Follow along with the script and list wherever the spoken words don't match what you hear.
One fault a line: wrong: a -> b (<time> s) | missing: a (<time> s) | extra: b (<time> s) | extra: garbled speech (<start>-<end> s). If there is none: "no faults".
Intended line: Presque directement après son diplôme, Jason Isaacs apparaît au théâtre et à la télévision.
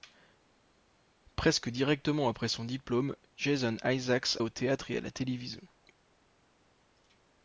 missing: apparaît (4.4 s)